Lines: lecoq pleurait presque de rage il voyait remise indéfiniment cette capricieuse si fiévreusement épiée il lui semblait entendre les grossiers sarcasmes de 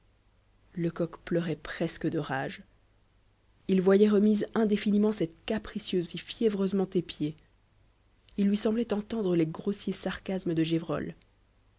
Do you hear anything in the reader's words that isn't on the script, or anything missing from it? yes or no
no